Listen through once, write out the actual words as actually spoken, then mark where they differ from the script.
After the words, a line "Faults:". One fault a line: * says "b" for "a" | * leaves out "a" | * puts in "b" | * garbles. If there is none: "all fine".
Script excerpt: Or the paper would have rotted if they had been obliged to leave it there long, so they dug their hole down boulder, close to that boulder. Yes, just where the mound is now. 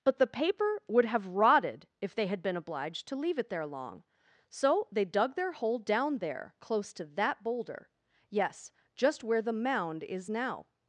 But the paper would have rotted if they had been obliged to leave it there long, so they dug their hole down there, close to that boulder. Yes, just where the mound is now.
Faults:
* says "But" for "Or"
* says "there" for "boulder"